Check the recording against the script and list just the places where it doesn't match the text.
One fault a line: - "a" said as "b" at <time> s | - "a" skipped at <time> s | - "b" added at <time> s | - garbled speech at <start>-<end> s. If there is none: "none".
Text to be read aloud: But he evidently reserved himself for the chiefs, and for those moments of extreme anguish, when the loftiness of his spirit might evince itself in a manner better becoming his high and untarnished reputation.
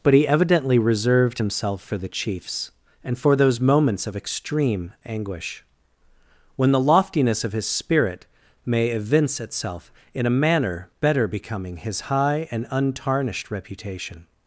- "might" said as "may" at 8.6 s